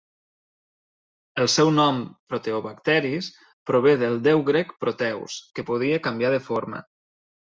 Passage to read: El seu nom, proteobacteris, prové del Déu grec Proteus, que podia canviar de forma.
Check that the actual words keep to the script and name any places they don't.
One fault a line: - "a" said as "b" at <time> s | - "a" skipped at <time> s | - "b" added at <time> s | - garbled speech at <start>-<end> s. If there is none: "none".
none